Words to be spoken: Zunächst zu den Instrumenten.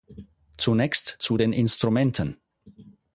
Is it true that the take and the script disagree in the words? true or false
false